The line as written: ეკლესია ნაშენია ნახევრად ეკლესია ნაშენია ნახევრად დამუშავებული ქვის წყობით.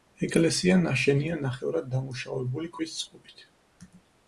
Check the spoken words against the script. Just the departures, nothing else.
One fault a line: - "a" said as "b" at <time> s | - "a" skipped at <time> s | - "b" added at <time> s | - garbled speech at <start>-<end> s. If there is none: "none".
- "ეკლესია ნაშენია ნახევრად" skipped at 1.9 s